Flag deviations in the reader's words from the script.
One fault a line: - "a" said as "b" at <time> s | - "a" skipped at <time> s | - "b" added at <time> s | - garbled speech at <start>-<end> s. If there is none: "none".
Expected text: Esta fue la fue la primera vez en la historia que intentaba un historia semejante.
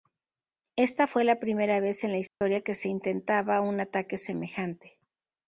- "fue la" skipped at 1.4 s
- "se" added at 2.7 s
- "historia" said as "ataque" at 3.8 s